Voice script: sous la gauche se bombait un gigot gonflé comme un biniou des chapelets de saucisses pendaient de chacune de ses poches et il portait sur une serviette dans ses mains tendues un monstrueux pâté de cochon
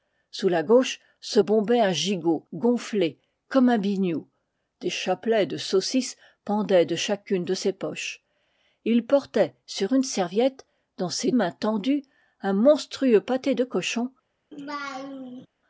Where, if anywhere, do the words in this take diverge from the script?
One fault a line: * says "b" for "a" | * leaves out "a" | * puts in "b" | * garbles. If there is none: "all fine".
all fine